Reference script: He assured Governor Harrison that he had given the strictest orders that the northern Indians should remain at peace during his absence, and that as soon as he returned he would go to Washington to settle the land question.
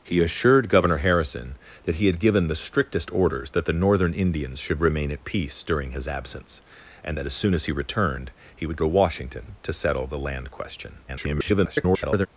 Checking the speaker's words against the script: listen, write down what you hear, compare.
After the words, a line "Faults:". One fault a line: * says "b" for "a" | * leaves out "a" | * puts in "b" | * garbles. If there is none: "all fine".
He assured Governor Harrison that he had given the strictest orders that the northern Indians should remain at peace during his absence, and that as soon as he returned he would to Washington to settle the land question. [garbled]
Faults:
* leaves out "go"
* garbles